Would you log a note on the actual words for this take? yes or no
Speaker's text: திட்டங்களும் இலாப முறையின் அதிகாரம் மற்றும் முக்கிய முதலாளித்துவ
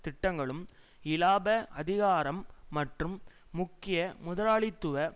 yes